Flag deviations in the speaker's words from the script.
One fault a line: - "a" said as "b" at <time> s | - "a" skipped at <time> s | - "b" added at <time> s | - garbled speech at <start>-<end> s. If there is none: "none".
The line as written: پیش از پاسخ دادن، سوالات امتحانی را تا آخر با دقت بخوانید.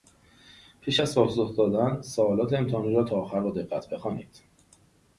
none